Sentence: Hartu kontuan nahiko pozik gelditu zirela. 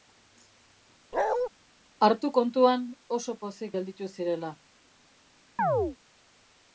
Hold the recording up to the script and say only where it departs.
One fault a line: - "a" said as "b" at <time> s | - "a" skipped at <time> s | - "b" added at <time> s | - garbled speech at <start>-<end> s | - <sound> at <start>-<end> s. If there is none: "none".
- bark at 1.1-1.5 s
- "nahiko" said as "oso" at 3.2 s
- chirp at 5.6-6.0 s